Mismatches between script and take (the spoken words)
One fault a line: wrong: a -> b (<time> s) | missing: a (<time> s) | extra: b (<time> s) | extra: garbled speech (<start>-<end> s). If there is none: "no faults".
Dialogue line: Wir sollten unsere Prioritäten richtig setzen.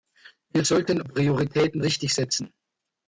missing: unsere (1.0 s)